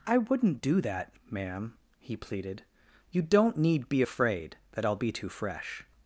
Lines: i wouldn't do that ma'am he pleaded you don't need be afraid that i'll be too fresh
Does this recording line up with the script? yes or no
yes